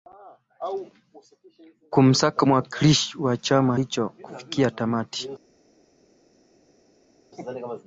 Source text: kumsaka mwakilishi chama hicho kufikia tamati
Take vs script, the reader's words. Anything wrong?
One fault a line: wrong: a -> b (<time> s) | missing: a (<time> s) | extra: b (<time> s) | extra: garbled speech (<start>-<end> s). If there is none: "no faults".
extra: wa (3.2 s)